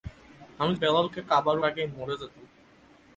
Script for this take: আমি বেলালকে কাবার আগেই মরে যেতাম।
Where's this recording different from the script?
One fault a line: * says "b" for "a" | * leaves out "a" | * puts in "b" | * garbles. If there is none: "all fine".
all fine